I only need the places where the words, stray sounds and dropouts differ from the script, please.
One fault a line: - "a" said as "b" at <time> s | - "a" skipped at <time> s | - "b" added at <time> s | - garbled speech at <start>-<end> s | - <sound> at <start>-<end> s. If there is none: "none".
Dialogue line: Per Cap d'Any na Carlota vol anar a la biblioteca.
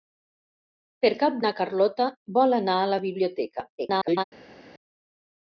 - "d'Any" skipped at 1.4 s
- garbled speech at 3.8-4.2 s